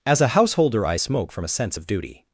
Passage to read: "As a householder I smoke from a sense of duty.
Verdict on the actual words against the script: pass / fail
pass